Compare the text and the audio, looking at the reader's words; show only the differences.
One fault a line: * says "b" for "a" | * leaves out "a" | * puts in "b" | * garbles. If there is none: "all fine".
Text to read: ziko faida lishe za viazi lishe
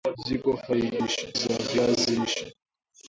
all fine